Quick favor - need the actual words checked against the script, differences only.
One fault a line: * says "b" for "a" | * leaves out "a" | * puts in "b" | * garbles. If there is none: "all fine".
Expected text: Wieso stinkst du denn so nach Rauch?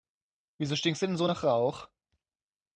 all fine